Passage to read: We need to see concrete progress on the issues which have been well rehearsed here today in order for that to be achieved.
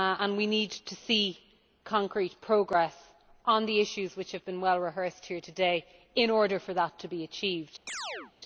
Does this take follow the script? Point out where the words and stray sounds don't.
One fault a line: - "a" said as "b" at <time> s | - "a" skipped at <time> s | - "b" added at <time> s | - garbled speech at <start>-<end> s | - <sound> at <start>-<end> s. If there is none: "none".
- chirp at 7.9-8.3 s